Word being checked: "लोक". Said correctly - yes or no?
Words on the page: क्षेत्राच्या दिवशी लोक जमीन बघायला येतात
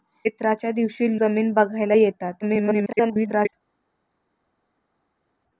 no